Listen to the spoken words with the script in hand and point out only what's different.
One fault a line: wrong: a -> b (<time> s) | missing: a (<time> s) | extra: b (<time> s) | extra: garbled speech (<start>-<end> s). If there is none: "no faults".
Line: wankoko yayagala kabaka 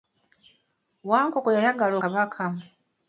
no faults